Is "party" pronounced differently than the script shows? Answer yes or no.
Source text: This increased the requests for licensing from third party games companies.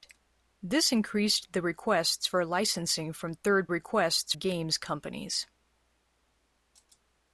yes